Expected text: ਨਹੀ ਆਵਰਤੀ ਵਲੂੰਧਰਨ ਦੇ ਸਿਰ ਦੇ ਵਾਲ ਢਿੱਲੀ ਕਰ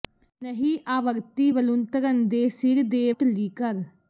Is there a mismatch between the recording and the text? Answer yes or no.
yes